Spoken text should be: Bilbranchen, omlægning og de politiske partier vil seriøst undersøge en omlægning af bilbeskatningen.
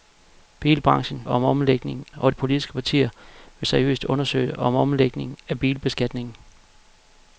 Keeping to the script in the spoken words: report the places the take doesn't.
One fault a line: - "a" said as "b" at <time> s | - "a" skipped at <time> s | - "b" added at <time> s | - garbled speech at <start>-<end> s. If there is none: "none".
none